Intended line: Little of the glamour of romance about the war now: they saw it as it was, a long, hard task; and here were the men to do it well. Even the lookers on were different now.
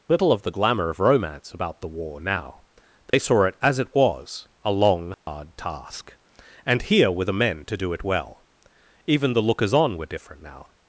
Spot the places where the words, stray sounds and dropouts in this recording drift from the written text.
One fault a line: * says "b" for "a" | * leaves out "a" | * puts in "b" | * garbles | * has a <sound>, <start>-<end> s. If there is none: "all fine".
* has a dropout, 3.1-3.1 s
* has a dropout, 5.1-5.3 s